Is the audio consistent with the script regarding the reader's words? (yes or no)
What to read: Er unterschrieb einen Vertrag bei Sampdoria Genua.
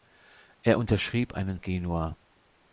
no